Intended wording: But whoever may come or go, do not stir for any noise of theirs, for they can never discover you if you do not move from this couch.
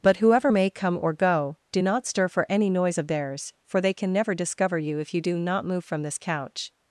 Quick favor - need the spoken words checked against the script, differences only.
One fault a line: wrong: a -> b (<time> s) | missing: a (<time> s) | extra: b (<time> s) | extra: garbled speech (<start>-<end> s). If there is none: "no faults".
no faults